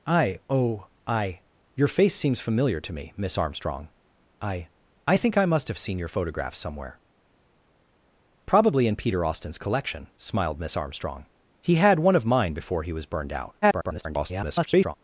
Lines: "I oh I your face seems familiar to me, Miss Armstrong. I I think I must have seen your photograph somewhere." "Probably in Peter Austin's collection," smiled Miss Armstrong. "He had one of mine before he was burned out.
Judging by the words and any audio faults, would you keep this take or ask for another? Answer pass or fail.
fail